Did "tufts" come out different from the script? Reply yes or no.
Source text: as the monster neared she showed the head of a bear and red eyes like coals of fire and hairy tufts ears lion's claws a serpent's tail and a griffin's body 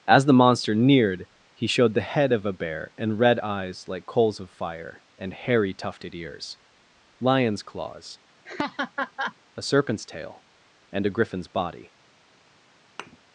yes